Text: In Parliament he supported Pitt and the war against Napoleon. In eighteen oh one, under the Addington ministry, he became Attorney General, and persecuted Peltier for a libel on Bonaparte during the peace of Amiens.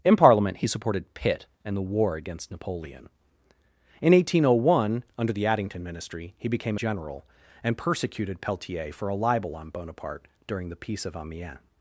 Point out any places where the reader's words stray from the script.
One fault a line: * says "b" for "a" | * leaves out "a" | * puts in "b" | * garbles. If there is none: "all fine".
* leaves out "Attorney"